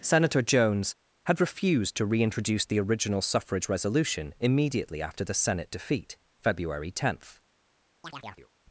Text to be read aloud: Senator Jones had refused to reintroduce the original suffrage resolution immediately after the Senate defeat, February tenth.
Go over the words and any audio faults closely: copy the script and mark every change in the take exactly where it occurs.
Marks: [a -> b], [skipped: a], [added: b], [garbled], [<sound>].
Senator Jones had refused to reintroduce the original suffrage resolution immediately after the Senate defeat, February tenth. [chirp]